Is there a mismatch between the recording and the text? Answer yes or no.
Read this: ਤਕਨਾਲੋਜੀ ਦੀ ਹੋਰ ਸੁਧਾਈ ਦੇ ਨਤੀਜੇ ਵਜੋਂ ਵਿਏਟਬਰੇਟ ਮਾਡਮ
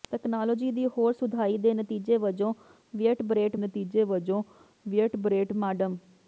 yes